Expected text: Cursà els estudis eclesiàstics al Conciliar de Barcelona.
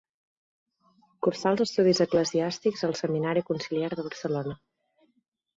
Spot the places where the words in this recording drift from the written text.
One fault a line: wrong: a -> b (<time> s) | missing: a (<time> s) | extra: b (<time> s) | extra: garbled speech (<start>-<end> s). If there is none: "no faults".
extra: Seminari (3.0 s)